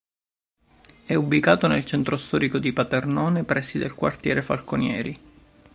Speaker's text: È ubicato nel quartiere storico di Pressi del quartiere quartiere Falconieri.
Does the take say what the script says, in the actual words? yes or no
no